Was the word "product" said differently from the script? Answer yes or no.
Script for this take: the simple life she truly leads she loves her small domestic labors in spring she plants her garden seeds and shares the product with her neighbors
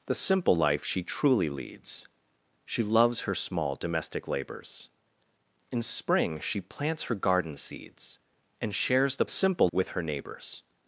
yes